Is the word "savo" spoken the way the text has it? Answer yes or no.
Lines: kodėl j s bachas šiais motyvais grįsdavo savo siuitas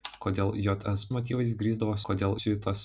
no